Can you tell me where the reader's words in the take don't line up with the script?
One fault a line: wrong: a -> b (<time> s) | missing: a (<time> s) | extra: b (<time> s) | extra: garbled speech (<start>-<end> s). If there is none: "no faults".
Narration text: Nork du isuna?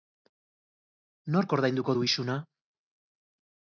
extra: ordainduko (1.6 s)